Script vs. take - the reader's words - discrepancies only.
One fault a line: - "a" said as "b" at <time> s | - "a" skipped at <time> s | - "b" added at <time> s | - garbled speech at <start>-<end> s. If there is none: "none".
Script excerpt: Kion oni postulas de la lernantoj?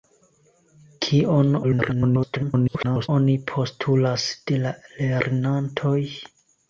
- garbled speech at 1.6-3.1 s